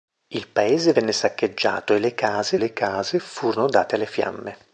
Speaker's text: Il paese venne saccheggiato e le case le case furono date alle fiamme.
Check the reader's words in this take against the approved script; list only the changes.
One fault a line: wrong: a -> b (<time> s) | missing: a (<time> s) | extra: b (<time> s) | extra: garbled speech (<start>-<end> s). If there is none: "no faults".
no faults